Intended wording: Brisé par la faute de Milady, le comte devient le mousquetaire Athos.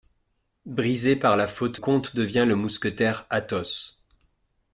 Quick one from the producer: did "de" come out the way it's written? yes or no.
no